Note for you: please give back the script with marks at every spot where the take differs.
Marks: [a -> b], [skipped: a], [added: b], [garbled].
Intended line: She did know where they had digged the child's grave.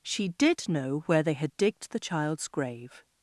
She did know where they had digged the child's grave.